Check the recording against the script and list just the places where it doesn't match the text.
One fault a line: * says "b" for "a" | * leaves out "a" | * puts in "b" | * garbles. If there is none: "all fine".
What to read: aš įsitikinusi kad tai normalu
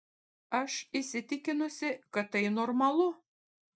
all fine